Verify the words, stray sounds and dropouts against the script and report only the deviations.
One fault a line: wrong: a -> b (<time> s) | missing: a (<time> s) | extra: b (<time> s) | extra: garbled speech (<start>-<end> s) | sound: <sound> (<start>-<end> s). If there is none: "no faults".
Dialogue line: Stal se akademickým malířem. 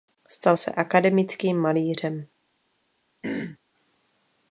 sound: throat clearing (3.2-3.6 s)